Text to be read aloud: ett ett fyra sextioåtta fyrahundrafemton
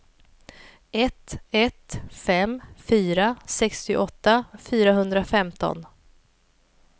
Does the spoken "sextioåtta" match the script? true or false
true